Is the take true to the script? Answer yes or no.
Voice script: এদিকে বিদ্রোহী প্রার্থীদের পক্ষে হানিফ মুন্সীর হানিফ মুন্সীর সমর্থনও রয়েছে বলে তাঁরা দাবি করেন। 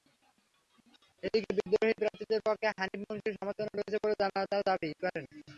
no